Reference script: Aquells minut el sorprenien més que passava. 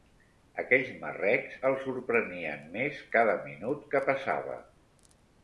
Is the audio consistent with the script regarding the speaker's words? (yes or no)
no